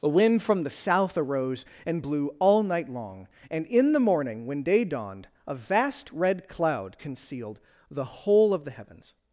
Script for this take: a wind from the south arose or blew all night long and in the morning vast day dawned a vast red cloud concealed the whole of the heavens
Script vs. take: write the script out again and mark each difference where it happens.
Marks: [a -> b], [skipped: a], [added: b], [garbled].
a wind from the south arose [or -> and] blew all night long and in the morning [vast -> when] day dawned a vast red cloud concealed the whole of the heavens